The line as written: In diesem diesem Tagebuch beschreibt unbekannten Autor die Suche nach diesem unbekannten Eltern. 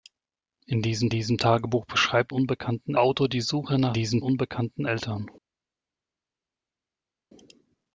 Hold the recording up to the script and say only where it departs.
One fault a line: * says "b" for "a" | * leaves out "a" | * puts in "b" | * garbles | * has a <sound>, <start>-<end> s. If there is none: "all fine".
all fine